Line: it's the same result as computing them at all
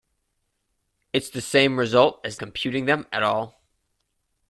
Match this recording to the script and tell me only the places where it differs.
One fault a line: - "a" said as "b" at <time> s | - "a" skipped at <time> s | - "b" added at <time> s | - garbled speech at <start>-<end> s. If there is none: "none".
none